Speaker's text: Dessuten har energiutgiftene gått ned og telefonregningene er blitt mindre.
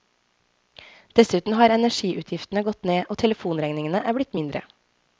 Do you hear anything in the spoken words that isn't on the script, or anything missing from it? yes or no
no